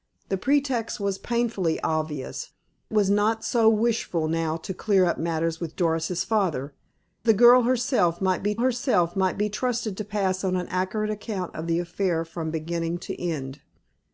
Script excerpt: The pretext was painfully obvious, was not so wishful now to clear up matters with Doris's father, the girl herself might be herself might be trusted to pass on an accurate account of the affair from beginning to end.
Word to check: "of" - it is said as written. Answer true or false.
true